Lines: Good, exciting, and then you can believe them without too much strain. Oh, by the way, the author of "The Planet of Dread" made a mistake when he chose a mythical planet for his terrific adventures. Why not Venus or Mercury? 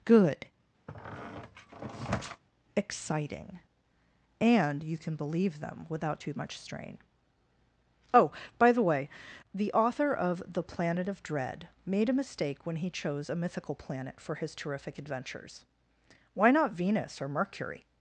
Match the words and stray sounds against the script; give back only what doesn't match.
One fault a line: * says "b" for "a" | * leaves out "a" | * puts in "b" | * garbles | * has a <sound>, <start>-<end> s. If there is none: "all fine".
* has a squeak, 0.9-2.4 s
* leaves out "then"